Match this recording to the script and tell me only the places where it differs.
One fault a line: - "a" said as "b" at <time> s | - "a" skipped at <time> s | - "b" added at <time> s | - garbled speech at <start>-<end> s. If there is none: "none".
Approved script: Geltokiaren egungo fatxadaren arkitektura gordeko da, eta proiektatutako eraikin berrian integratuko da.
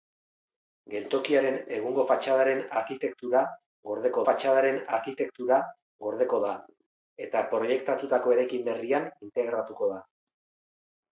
- "fatxadaren arkitektura gordeko" added at 4.3 s